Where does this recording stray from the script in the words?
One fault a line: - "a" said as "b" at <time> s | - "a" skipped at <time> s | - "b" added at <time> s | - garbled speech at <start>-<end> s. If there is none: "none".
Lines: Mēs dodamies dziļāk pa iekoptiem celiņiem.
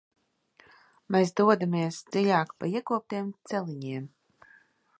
none